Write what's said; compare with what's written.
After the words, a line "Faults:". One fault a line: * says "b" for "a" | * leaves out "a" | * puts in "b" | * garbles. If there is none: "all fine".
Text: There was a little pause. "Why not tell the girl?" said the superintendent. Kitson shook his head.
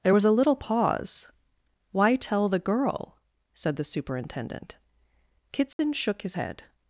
There was a little pause. "Why tell the girl?" said the superintendent. Kitson shook his head.
Faults:
* leaves out "not"